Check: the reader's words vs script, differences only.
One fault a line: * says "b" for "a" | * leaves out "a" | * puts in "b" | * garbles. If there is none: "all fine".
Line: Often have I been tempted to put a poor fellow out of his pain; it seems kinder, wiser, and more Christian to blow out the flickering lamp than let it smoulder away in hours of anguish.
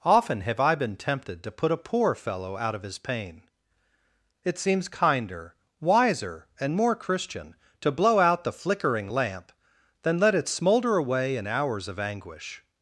all fine